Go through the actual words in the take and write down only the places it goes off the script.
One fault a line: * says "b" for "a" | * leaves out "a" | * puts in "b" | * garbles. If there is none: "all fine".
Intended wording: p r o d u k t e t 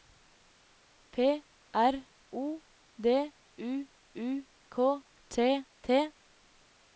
* puts in "u"
* leaves out "e"